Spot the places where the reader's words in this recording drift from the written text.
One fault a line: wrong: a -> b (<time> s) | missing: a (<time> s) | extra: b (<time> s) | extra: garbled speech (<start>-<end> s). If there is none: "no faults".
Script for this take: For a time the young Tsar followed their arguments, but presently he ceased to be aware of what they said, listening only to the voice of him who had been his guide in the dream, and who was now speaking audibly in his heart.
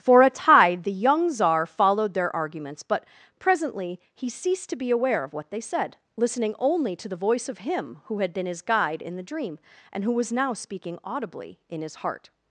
wrong: time -> tide (0.3 s)